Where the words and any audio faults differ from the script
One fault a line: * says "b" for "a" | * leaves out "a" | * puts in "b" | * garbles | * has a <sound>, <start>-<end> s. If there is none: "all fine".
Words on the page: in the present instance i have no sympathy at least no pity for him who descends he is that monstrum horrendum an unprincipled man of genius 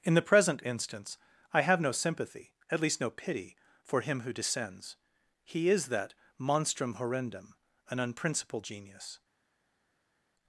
* leaves out "man of"